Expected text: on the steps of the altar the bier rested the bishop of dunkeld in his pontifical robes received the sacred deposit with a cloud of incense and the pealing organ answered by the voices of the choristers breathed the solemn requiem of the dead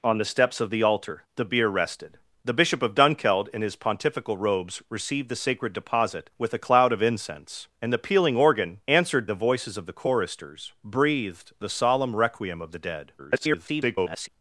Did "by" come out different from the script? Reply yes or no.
yes